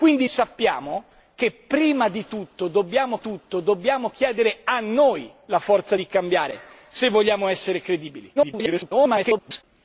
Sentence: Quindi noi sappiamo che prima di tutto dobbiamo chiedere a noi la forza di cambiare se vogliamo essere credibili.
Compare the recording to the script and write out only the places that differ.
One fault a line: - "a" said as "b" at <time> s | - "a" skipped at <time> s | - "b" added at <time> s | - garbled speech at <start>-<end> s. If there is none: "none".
- "noi" skipped at 0.3 s
- "tutto dobbiamo" added at 3.2 s
- garbled speech at 8.4-9.6 s